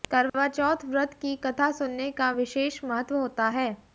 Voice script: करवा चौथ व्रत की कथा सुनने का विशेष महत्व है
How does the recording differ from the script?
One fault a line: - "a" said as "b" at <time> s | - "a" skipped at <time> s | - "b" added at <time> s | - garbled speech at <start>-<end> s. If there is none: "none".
- "होता" added at 3.2 s